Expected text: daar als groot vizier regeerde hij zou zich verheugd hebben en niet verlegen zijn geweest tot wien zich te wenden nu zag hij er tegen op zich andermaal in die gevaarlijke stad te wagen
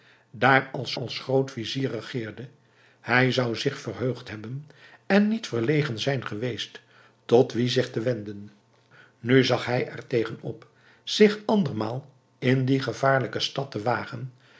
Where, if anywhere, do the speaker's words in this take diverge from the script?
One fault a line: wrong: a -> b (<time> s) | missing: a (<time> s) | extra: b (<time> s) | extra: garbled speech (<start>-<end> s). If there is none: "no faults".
extra: als (0.9 s)